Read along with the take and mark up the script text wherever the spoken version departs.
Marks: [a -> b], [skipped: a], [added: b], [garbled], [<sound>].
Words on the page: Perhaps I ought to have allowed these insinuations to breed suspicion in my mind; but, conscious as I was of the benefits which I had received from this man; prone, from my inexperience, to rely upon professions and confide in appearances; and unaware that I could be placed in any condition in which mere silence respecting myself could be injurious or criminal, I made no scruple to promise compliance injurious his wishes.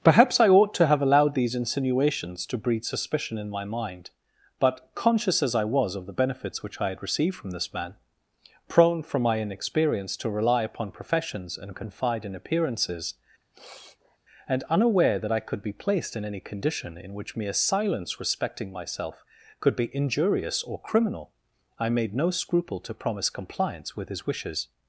Perhaps I ought to have allowed these insinuations to breed suspicion in my mind; but, conscious as I was of the benefits which I had received from this man; prone, from my inexperience, to rely upon professions and confide in appearances; [sniff] and unaware that I could be placed in any condition in which mere silence respecting myself could be injurious or criminal, I made no scruple to promise compliance [injurious -> with] his wishes.